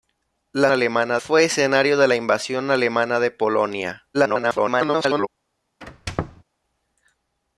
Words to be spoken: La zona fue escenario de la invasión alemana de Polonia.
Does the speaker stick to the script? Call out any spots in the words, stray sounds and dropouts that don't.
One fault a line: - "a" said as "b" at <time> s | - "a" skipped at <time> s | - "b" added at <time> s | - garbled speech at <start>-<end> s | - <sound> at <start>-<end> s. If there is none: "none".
- "zona" said as "alemana" at 0.7 s
- garbled speech at 4.1-5.3 s
- squeak at 5.8-6.4 s